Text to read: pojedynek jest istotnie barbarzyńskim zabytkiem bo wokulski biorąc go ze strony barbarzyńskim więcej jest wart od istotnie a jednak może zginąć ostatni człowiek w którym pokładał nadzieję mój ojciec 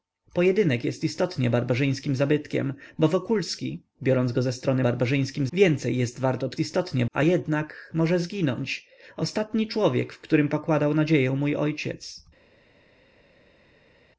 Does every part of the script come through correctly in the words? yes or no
yes